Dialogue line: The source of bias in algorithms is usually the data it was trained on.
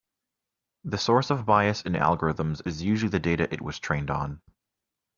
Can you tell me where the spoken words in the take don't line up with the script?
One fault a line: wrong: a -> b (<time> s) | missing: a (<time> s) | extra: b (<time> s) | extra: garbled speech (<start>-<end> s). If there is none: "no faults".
no faults